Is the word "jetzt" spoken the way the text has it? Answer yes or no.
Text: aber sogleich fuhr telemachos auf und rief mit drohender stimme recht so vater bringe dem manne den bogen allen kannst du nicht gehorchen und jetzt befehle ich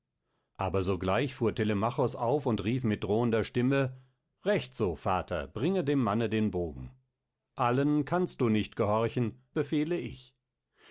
no